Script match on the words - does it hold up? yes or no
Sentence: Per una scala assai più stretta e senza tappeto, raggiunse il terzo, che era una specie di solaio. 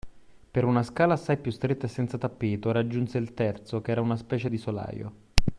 yes